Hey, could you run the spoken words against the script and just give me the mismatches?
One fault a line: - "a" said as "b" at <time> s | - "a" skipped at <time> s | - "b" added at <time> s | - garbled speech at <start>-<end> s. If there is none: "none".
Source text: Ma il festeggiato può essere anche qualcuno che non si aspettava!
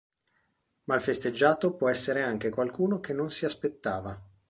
none